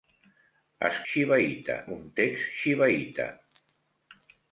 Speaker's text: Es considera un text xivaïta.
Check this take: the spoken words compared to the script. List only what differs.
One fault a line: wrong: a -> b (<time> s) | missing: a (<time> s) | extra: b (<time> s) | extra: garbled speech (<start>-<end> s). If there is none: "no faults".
wrong: considera -> xivaïta (1.1 s)